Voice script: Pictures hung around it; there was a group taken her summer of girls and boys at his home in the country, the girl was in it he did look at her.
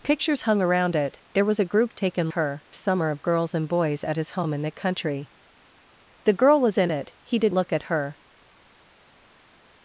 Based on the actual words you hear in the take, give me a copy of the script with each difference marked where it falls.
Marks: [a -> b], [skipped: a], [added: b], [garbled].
Pictures hung around it; there was a group taken her summer of girls and boys at his home in the country, the girl was in it he did look at her.